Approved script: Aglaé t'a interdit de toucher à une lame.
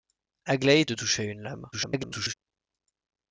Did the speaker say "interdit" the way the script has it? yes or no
no